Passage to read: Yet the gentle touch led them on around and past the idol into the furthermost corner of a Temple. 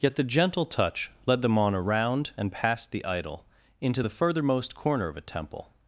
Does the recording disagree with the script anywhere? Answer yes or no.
no